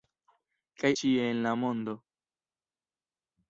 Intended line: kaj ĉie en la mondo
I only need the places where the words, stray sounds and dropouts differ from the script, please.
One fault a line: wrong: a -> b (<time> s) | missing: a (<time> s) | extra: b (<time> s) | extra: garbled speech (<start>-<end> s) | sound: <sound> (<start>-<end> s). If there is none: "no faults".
no faults